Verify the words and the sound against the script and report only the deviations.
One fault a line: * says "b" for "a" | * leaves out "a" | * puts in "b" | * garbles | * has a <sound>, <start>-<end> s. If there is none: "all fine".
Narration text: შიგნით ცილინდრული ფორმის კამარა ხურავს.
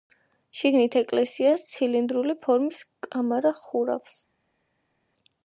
* puts in "ეკლესიას"